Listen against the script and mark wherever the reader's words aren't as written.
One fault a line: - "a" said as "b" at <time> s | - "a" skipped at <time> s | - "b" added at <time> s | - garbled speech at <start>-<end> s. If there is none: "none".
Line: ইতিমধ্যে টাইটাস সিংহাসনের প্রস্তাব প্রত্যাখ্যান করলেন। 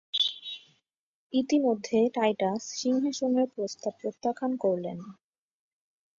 none